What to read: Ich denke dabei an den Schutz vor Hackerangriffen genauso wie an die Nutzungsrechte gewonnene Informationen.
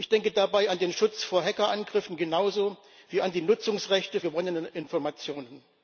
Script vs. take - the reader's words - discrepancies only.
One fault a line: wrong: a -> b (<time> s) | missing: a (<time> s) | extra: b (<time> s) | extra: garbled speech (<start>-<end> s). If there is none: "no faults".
no faults